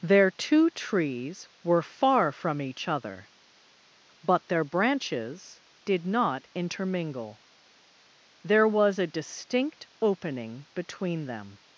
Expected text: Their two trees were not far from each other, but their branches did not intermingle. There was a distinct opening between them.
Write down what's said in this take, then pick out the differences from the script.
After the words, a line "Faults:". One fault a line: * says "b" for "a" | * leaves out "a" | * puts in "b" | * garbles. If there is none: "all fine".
Their two trees were far from each other, but their branches did not intermingle. There was a distinct opening between them.
Faults:
* leaves out "not"